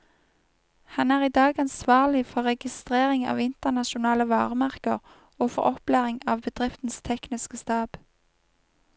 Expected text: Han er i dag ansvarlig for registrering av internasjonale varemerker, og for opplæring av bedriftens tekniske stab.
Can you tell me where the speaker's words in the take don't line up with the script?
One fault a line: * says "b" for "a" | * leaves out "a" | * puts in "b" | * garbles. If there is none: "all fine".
all fine